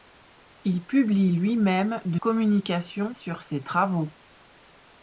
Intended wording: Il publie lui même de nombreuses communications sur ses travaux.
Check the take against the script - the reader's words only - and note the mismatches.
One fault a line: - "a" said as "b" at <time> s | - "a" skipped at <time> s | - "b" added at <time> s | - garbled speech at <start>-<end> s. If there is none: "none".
- "nombreuses" skipped at 2.2 s